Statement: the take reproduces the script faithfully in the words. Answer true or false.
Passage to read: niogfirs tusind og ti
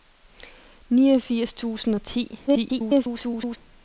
false